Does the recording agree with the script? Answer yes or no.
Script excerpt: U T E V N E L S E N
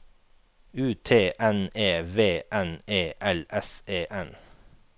no